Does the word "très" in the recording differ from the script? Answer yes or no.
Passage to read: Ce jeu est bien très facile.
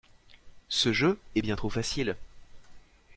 yes